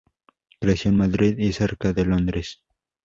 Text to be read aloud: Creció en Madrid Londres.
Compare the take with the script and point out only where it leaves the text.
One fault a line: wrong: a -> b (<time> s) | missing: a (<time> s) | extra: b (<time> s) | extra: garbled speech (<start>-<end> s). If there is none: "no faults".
extra: y cerca de (1.4 s)